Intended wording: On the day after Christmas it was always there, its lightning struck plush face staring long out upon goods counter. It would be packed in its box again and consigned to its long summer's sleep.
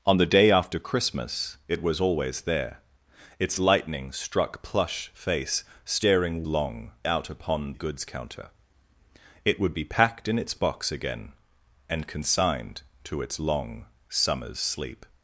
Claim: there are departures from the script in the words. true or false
false